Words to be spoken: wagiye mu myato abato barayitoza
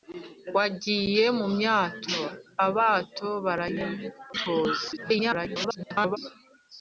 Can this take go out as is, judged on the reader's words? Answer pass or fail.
fail